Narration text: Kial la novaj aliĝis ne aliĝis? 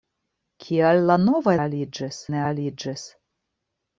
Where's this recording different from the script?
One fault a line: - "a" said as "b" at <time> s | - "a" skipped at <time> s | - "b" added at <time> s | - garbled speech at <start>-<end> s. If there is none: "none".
none